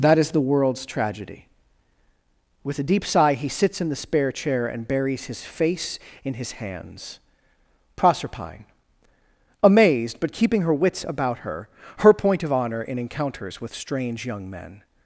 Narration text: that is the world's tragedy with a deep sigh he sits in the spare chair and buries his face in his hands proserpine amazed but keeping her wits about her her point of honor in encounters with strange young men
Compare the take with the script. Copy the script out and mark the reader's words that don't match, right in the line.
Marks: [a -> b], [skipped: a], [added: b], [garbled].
that is the world's tragedy with a deep sigh he sits in the spare chair and buries his face in his hands proserpine amazed but keeping her wits about her her point of honor in encounters with strange young men